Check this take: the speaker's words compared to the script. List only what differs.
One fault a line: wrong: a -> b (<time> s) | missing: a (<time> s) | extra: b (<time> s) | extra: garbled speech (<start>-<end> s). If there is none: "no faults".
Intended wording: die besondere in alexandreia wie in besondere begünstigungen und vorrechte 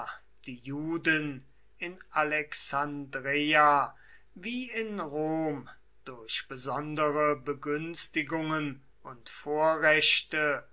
wrong: besondere -> juden (0.6 s)
extra: rom durch (5.0 s)